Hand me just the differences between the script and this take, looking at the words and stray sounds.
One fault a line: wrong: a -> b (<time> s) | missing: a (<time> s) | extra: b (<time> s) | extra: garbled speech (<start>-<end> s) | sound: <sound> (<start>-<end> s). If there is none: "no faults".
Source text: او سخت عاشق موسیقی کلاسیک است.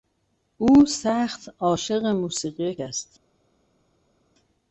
missing: کلاسیک (2.8 s)